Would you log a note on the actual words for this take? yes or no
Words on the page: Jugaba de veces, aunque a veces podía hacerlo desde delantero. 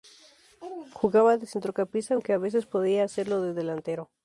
yes